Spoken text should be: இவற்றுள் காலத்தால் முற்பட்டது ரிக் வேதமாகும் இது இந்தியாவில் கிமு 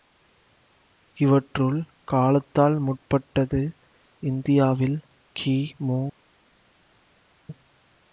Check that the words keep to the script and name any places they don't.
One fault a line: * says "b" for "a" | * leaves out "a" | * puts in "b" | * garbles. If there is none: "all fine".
* leaves out "ரிக் வேதமாகும் இது"